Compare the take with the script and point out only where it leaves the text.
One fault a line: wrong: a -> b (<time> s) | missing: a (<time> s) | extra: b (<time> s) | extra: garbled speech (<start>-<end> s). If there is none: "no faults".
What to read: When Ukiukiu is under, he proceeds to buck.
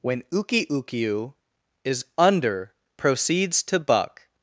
missing: he (2.7 s)